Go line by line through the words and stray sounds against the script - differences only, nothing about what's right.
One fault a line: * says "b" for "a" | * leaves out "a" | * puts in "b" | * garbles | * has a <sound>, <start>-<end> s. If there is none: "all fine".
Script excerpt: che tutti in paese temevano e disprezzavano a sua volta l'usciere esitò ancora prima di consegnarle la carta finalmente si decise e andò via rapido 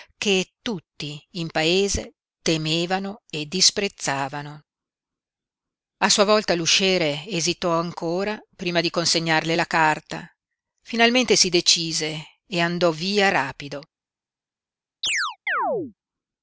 * has a chirp, 15.0-15.9 s